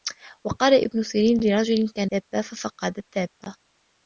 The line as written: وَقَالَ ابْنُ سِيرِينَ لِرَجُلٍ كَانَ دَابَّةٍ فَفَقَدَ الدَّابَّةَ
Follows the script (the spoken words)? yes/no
yes